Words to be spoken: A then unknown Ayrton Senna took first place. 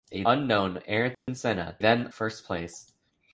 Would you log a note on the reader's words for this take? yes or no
yes